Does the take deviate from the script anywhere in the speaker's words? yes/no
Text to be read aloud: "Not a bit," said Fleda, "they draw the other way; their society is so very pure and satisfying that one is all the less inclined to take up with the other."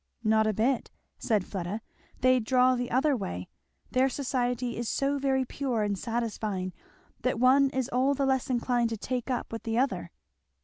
no